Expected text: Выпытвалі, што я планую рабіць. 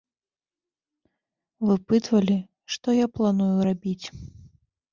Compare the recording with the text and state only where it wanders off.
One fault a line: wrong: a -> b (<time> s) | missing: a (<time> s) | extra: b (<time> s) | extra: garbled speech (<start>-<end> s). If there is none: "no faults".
no faults